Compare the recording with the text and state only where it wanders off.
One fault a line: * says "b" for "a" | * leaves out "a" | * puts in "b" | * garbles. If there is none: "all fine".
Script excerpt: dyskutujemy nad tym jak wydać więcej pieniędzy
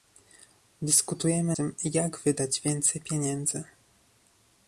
* leaves out "nad"